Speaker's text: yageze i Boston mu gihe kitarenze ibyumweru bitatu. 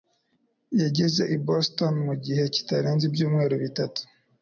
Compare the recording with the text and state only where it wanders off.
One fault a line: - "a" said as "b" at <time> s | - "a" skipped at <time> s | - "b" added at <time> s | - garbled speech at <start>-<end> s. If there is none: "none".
none